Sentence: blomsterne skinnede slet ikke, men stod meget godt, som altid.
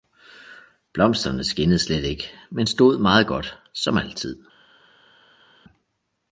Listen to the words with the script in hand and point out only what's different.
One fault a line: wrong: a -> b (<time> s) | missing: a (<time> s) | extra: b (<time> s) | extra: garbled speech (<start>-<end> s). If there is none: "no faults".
no faults